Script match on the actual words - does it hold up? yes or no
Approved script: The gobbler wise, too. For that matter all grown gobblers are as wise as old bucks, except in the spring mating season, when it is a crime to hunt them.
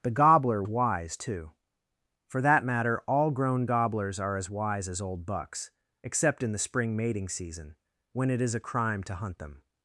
yes